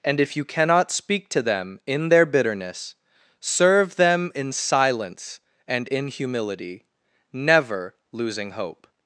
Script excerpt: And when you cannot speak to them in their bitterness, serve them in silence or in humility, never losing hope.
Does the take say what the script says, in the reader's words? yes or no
no